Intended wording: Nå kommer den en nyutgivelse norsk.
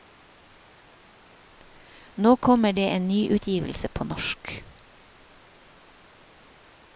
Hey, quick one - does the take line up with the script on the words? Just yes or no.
no